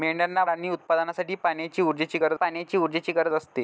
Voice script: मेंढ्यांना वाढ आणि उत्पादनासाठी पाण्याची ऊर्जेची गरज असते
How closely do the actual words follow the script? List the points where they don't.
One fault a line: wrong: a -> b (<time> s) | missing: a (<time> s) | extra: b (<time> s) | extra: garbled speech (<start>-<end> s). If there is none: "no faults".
missing: वाढ (0.4 s)
extra: पाण्याची ऊर्जेची गरज (2.3 s)